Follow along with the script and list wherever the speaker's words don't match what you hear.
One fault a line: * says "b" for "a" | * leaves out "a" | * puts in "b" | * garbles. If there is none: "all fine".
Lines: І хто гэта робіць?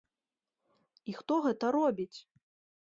all fine